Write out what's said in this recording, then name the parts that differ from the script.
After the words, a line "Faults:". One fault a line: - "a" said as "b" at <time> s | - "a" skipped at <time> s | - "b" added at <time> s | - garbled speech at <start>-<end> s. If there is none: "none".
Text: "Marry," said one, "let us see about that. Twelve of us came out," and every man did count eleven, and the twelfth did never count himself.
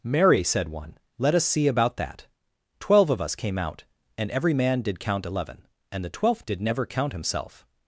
"Marry," said one, "let us see about that. Twelve of us came out," and every man did count eleven, and the twelfth did never count himself.
Faults:
none